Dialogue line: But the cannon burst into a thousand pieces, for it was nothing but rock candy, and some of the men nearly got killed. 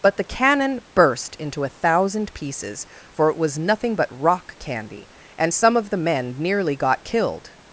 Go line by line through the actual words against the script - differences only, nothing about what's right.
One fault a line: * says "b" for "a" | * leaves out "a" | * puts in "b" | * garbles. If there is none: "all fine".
all fine